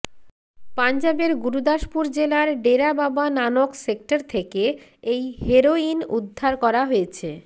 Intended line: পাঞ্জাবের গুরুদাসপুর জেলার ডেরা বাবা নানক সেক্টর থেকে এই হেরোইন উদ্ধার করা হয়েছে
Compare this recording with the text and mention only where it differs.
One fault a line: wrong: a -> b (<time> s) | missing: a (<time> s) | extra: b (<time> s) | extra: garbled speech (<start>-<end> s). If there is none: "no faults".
no faults